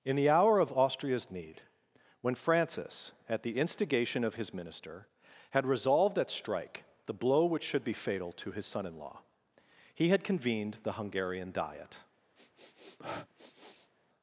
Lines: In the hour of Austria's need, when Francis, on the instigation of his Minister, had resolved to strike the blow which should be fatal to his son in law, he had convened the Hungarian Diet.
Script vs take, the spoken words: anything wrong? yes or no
yes